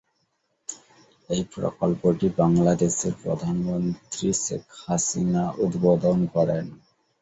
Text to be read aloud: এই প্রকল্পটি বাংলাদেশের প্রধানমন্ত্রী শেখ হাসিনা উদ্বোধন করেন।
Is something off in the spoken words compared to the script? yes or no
no